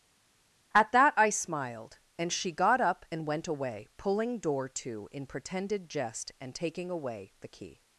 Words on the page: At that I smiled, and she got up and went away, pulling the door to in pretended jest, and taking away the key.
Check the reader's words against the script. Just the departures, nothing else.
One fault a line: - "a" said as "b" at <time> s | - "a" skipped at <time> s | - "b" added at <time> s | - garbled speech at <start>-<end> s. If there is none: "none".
- "the" skipped at 4.4 s